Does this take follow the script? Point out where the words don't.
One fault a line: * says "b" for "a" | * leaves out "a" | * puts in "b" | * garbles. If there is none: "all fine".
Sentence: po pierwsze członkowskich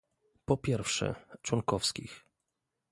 all fine